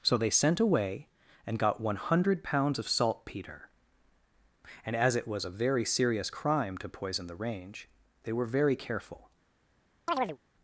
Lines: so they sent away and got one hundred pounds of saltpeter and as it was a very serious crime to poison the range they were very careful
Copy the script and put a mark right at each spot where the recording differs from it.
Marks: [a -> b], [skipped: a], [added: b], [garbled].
so they sent away and got one hundred pounds of saltpeter and as it was a very serious crime to poison the range they were very careful